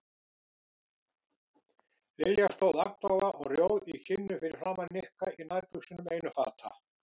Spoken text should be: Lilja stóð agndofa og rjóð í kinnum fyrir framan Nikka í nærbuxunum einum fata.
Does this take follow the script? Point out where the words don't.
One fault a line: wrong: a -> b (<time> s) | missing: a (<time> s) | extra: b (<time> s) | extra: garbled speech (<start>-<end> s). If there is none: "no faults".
no faults